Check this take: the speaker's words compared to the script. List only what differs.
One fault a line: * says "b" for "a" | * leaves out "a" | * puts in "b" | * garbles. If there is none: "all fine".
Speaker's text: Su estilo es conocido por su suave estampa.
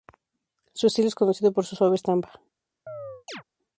all fine